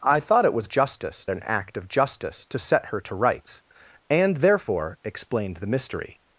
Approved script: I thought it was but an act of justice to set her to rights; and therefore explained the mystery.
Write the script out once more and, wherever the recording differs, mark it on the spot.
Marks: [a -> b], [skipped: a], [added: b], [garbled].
I thought it was [but -> justice] an act of justice to set her to rights; and therefore explained the mystery.